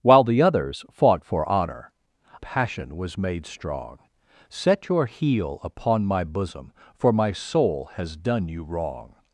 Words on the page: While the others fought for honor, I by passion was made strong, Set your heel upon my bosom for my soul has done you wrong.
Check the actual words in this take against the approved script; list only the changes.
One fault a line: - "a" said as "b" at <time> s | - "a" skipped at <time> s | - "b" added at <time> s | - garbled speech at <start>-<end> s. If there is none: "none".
- "I by" skipped at 1.9 s